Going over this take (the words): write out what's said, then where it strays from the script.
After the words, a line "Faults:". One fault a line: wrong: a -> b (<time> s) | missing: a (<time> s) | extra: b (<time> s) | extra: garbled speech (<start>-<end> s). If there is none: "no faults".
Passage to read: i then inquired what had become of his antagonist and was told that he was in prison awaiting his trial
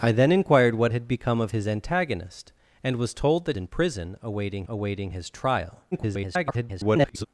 i then inquired what had become of his antagonist and was told that in prison awaiting awaiting his trial [garbled]
Faults:
missing: he was (3.6 s)
extra: awaiting (4.7 s)
extra: garbled speech (5.9-7.3 s)